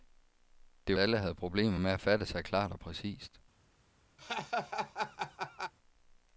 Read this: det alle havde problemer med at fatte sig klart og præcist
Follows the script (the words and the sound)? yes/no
no